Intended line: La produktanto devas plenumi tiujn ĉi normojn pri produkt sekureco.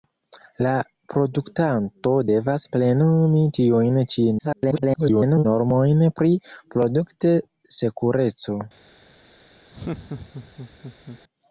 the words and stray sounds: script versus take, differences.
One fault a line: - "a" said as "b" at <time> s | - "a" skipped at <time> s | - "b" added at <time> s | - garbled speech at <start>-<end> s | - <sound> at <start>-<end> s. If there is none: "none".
- garbled speech at 4.4-5.5 s
- laugh at 9.7-11.2 s